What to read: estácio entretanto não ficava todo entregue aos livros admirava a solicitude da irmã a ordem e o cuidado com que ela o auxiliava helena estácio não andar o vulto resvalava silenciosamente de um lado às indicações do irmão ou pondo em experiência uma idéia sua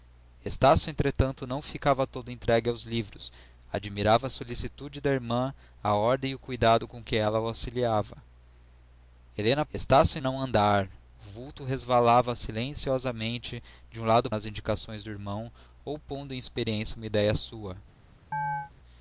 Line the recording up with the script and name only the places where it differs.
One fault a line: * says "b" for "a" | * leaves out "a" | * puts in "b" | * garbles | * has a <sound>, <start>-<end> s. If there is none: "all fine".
* has a chirp, 18.3-18.7 s